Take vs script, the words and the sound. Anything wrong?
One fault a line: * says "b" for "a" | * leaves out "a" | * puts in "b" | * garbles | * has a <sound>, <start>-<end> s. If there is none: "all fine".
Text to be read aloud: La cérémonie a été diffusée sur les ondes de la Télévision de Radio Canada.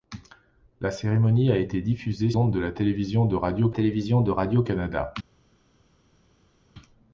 * says "ondes de la Télévision" for "sur les ondes"
* says "Radio" for "la"